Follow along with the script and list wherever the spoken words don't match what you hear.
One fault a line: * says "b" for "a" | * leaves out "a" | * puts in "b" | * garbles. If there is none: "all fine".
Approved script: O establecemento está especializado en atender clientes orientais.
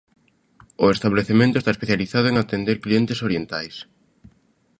all fine